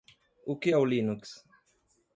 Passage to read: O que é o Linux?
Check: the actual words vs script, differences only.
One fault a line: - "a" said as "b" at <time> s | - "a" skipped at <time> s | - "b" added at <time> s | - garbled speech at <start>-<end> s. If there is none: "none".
none